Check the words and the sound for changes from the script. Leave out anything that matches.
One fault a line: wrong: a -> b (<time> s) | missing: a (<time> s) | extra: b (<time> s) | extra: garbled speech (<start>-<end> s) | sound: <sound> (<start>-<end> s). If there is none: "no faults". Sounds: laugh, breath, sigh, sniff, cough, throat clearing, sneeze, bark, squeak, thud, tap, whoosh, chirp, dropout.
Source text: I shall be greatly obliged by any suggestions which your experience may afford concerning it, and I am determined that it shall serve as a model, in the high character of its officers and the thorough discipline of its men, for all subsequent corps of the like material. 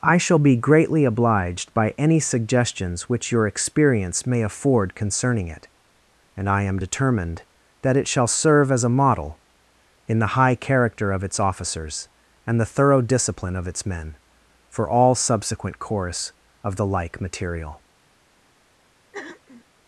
wrong: corps -> course (15.8 s)
sound: throat clearing (19.1-19.6 s)